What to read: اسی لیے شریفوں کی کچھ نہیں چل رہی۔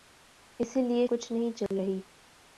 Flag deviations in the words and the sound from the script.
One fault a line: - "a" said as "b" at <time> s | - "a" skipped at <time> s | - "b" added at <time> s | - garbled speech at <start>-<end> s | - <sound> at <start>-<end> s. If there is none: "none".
- "شریفوں کی" skipped at 1.1 s
- dropout at 1.7-1.7 s